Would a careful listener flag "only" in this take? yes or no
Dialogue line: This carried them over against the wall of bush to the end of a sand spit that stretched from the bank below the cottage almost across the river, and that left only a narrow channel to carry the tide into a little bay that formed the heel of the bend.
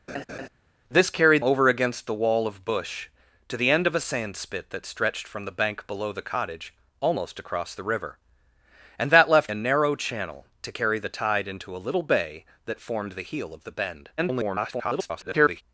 yes